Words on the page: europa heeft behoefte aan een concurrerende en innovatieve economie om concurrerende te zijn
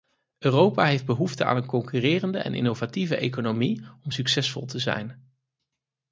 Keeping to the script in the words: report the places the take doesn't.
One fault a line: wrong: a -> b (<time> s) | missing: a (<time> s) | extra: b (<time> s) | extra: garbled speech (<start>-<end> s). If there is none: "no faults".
wrong: concurrerende -> succesvol (4.1 s)